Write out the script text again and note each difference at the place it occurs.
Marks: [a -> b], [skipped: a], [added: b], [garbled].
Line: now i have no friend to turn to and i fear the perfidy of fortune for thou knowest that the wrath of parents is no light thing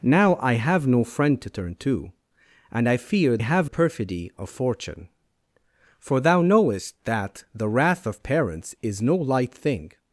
now i have no friend to turn to and i fear [the -> have] perfidy of fortune for thou knowest that the wrath of parents is no light thing